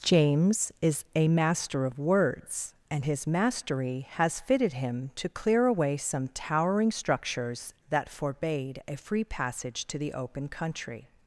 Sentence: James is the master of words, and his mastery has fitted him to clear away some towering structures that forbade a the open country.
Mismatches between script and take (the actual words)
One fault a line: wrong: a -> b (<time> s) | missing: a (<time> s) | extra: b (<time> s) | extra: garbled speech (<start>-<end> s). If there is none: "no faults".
wrong: the -> a (1.1 s)
extra: free passage to (9.0 s)